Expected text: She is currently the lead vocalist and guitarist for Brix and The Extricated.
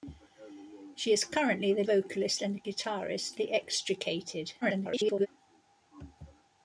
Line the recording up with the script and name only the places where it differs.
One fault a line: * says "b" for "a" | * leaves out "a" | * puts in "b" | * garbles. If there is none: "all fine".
* leaves out "lead"
* leaves out "for Brix and"
* garbles